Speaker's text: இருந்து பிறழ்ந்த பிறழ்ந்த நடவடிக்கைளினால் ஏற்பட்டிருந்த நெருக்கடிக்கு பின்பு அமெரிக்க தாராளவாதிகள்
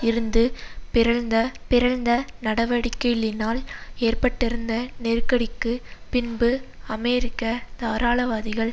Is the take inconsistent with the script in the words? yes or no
no